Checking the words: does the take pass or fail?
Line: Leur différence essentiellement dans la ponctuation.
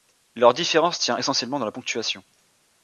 fail